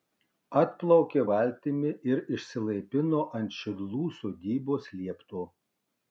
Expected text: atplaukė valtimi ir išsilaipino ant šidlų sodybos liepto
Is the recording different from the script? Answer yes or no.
no